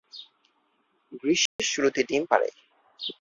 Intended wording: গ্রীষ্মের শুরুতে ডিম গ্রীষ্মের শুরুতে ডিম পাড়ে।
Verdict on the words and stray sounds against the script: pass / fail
fail